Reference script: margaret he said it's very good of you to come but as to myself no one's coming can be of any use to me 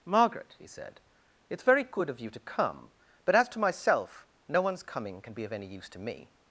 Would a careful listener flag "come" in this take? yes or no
no